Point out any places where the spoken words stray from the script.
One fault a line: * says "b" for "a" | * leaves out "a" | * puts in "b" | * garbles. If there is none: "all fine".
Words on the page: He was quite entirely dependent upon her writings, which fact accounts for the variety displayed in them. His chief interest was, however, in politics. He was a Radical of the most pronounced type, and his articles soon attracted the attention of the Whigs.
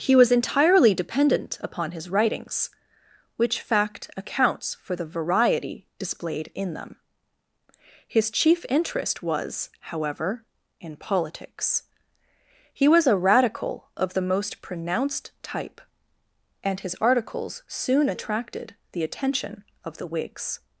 * leaves out "quite"
* says "his" for "her"